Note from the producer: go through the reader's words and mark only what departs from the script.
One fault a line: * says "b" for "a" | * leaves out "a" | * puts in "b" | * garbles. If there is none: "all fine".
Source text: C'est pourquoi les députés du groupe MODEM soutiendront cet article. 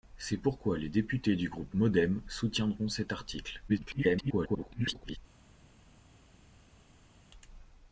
* garbles